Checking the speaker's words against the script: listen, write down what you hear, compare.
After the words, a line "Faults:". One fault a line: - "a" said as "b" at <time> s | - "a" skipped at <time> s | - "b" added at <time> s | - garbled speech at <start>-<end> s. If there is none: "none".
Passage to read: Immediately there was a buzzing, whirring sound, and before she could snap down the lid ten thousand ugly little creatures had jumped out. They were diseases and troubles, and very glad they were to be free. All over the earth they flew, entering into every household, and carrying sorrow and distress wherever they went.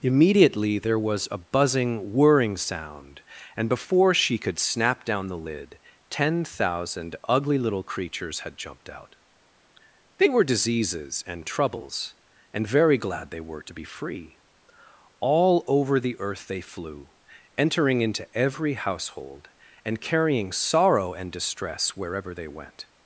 Immediately there was a buzzing, whirring sound, and before she could snap down the lid ten thousand ugly little creatures had jumped out. They were diseases and troubles, and very glad they were to be free. All over the earth they flew, entering into every household, and carrying sorrow and distress wherever they went.
Faults:
none